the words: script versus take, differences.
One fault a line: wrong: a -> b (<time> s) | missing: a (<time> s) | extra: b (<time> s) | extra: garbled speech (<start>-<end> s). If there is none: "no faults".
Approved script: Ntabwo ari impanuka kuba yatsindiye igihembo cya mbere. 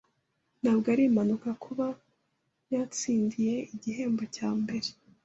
no faults